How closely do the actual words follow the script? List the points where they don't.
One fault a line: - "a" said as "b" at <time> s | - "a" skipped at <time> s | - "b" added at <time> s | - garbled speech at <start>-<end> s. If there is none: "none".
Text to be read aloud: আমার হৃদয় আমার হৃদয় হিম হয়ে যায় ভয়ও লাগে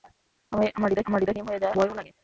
none